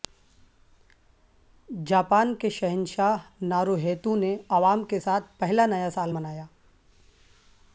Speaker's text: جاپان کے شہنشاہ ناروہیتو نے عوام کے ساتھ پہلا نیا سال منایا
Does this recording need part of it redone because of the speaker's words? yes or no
no